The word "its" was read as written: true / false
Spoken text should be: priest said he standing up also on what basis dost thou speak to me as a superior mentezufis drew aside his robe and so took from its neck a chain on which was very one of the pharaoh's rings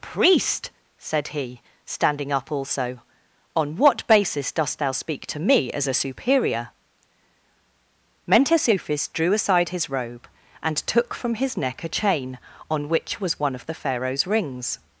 false